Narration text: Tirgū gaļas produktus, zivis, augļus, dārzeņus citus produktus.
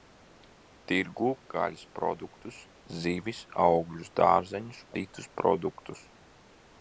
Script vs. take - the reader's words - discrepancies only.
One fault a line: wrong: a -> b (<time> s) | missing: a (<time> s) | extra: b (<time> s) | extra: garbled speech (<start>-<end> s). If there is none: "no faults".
no faults